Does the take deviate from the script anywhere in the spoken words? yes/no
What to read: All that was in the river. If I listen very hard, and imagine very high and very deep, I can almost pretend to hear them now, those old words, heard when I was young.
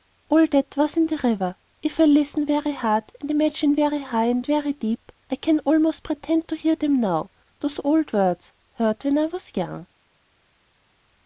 no